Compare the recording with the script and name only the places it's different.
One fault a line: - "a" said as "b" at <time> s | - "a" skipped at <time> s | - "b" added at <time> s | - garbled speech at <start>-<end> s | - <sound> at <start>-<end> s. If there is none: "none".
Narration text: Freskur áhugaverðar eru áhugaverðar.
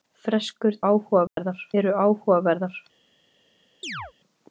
- dropout at 1.3-1.4 s
- chirp at 3.8-4.1 s